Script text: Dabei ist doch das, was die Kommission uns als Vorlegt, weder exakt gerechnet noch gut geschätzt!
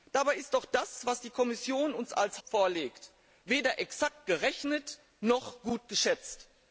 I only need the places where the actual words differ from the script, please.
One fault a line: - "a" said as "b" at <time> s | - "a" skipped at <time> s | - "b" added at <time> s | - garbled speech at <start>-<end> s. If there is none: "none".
none